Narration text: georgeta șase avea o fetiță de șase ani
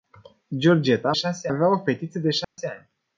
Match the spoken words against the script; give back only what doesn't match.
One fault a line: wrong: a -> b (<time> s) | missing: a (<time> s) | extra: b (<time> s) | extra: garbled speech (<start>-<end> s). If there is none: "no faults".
no faults